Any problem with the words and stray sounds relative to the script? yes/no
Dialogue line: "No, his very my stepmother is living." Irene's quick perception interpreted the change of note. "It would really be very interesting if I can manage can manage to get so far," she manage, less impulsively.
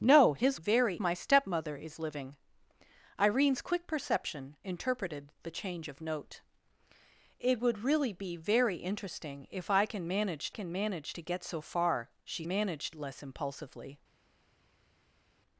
no